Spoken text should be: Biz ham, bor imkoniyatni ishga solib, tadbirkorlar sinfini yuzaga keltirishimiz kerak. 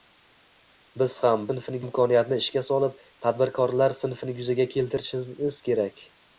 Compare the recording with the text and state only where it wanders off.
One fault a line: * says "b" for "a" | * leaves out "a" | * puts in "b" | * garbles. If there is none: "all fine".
* says "sinfini" for "bor"